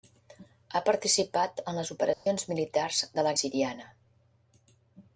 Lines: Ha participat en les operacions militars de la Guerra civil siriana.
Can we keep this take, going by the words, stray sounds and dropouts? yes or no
no